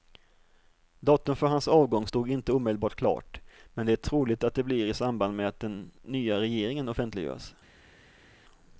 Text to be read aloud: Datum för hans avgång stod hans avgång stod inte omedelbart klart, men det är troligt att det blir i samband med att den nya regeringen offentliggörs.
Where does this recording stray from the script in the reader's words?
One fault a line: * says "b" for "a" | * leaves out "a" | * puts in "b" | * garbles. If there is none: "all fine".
* leaves out "hans avgång stod"